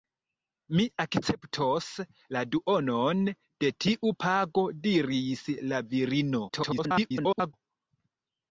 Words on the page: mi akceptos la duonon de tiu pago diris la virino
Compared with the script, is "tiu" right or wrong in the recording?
right